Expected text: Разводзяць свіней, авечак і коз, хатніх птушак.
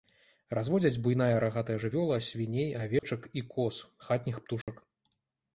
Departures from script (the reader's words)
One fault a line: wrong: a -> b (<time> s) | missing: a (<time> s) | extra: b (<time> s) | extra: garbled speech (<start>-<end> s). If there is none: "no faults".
extra: буйная рагатая жывёла (1.1 s)